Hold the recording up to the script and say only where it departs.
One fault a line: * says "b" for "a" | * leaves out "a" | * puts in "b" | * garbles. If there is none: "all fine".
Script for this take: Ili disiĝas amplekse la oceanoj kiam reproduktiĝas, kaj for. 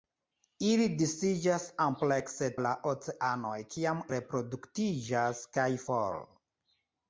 all fine